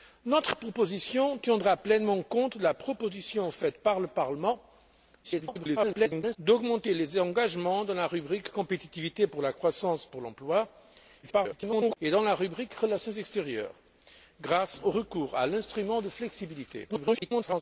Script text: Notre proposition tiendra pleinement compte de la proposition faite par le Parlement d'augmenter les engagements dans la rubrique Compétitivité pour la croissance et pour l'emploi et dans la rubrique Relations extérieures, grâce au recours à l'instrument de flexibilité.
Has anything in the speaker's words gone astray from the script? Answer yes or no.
yes